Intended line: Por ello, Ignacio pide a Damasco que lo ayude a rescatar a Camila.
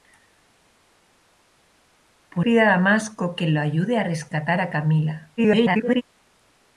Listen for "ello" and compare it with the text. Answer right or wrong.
wrong